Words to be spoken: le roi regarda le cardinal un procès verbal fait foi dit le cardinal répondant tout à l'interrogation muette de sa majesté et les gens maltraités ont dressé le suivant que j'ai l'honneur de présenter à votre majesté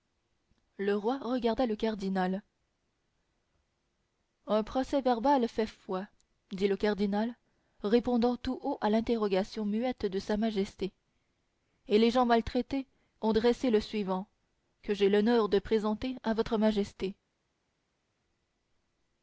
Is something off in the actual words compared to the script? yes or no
yes